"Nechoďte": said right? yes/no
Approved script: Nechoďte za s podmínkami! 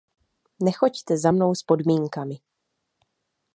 yes